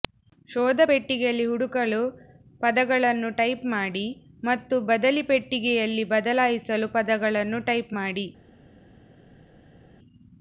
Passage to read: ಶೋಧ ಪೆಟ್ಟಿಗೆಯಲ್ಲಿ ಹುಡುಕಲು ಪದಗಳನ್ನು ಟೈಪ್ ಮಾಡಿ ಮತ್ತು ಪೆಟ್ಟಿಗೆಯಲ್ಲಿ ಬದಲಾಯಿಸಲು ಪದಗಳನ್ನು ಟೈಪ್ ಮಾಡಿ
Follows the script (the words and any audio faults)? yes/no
no